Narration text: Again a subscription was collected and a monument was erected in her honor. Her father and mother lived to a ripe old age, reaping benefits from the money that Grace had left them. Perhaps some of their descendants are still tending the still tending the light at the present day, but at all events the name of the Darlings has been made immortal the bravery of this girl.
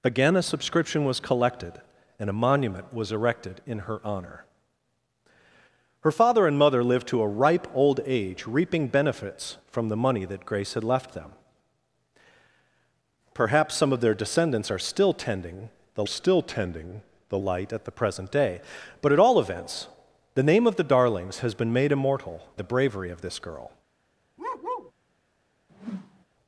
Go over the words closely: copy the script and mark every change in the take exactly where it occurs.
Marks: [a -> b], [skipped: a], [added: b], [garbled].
Again a subscription was collected and a monument was erected in her honor. Her father and mother lived to a ripe old age, reaping benefits from the money that Grace had left them. Perhaps some of their descendants are still tending the still tending the light at the present day, but at all events the name of the Darlings has been made immortal the bravery of this girl.